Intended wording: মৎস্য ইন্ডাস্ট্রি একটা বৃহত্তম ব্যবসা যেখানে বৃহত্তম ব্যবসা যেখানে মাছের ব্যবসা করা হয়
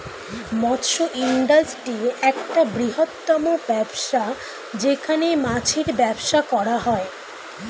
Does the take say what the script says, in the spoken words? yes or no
no